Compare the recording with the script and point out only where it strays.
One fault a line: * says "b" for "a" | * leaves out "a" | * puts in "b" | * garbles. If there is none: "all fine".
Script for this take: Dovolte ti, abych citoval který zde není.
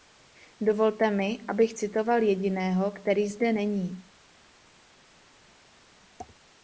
* says "mi" for "ti"
* puts in "jediného"